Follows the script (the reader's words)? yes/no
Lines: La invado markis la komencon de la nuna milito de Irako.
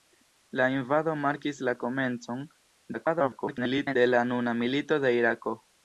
no